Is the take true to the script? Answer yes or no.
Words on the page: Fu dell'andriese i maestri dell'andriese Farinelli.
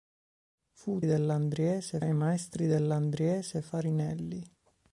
yes